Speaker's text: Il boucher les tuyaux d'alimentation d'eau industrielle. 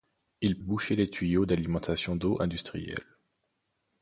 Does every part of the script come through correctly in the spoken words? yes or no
yes